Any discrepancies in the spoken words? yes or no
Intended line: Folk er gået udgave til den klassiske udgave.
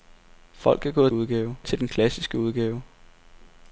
no